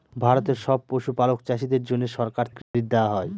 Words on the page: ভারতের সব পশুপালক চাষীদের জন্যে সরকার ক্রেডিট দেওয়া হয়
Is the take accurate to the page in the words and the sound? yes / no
no